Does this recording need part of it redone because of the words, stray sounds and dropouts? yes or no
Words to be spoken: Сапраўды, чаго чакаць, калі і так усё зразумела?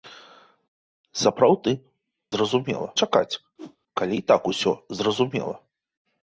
yes